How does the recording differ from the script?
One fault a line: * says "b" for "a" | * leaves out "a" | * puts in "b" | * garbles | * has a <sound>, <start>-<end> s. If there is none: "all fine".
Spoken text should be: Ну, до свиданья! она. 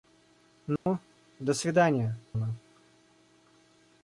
* has a dropout, 0.8-0.9 s